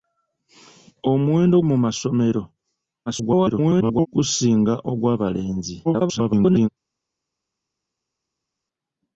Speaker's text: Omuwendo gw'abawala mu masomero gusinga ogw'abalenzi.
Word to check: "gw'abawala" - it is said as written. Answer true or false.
false